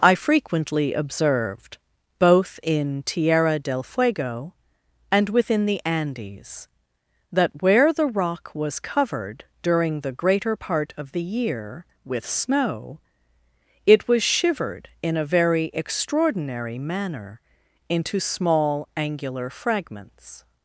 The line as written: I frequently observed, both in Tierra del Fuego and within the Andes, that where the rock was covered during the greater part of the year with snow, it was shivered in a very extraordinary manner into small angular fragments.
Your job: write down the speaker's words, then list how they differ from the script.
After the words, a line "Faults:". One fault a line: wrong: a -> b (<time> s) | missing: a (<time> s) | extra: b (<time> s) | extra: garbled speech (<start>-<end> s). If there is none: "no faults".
I frequently observed, both in Tierra del Fuego and within the Andes, that where the rock was covered during the greater part of the year with snow, it was shivered in a very extraordinary manner into small angular fragments.
Faults:
no faults